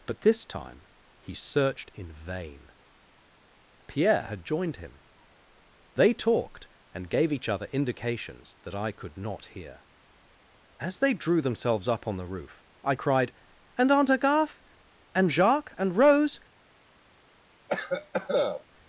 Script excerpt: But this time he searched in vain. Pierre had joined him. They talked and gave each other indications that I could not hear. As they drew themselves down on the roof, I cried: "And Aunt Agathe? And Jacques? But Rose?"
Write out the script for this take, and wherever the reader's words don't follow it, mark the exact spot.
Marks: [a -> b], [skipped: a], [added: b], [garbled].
But this time he searched in vain. Pierre had joined him. They talked and gave each other indications that I could not hear. As they drew themselves [down -> up] on the roof, I cried: "And Aunt Agathe? And Jacques? [But -> And] Rose?"